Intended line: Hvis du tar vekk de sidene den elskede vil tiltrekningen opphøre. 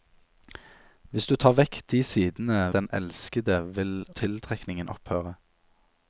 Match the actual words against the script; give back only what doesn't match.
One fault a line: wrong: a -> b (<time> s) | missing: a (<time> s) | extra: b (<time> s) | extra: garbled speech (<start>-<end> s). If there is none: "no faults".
no faults